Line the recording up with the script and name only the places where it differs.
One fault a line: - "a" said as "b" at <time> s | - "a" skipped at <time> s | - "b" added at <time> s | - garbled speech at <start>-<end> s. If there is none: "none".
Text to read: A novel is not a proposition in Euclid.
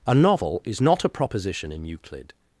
none